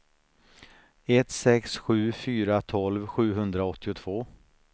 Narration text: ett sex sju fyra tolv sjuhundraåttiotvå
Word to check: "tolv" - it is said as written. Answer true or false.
true